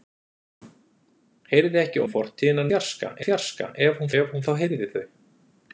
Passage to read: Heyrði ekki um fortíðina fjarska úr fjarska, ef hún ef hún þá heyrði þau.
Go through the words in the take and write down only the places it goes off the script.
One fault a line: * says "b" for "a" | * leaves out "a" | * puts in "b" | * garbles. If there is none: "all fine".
all fine